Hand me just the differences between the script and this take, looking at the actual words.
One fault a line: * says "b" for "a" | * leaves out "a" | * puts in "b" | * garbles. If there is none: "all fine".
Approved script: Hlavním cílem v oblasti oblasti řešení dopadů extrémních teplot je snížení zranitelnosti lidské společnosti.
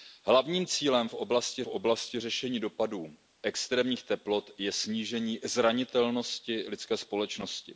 all fine